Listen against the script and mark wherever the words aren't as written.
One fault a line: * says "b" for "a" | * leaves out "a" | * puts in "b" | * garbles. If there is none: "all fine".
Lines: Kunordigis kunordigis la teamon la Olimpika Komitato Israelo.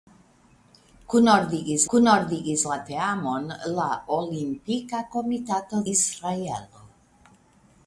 all fine